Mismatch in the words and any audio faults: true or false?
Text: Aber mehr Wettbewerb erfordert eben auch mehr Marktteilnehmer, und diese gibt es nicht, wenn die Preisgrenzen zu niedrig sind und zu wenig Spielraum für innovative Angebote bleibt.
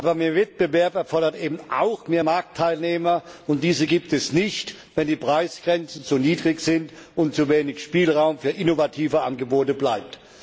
false